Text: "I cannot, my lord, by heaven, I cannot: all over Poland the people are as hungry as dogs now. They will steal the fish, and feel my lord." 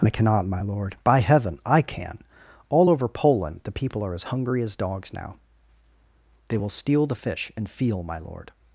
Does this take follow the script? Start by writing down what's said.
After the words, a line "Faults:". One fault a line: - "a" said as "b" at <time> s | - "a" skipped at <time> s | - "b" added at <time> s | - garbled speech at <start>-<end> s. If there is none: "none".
"I cannot, my lord, by heaven, I can: all over Poland the people are as hungry as dogs now. They will steal the fish, and feel my lord."
Faults:
- "cannot" said as "can" at 1.8 s